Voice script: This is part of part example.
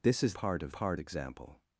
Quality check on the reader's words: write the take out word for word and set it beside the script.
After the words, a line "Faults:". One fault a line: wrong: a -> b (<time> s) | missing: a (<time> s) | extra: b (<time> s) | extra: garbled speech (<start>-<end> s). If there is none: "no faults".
This is part of part example.
Faults:
no faults